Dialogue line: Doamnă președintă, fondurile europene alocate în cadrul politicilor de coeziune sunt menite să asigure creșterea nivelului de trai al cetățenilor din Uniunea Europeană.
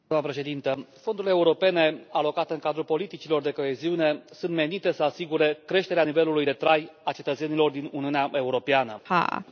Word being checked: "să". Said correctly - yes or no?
yes